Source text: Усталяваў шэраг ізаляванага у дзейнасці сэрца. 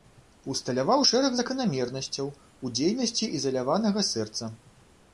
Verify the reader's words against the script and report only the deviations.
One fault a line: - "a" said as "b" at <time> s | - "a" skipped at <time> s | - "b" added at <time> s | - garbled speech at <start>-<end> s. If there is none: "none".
- "ізаляванага" said as "заканамернасцяў" at 1.4 s
- "ізаляванага" added at 3.4 s